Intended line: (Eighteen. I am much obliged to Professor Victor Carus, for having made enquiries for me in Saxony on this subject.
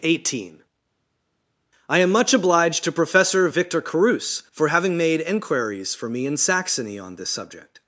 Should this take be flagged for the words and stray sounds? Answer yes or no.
no